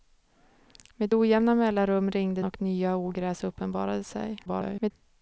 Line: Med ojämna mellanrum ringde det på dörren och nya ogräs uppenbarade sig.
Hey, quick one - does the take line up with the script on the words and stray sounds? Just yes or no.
no